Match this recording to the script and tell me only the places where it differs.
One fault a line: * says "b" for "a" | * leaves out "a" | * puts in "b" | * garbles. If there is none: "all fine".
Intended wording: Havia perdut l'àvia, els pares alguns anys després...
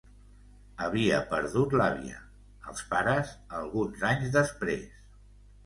all fine